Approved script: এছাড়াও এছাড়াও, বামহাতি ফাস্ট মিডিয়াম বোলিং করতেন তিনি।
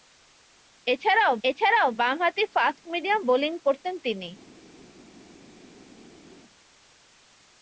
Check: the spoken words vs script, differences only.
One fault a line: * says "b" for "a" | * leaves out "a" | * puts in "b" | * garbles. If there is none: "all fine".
all fine